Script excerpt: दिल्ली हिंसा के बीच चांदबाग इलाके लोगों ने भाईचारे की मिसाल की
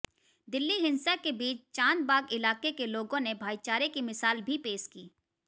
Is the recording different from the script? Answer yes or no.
yes